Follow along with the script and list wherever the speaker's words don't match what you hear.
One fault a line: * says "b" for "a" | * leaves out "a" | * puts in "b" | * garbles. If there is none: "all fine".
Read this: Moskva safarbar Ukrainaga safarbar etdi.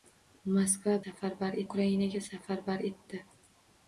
all fine